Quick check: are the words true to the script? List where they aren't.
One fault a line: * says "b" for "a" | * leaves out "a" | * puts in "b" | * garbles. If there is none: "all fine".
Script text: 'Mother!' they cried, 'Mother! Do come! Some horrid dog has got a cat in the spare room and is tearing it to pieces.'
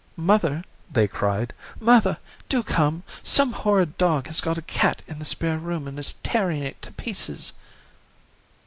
all fine